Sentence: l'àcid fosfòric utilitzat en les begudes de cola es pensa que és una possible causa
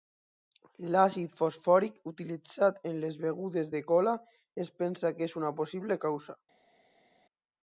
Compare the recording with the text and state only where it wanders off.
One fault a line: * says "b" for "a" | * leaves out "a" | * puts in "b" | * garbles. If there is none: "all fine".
all fine